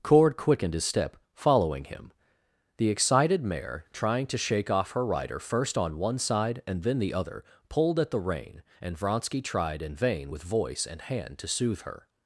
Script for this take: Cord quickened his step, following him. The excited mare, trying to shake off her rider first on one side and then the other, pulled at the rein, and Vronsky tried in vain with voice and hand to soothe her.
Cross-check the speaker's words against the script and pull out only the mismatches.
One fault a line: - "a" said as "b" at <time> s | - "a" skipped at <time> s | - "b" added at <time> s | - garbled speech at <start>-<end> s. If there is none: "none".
none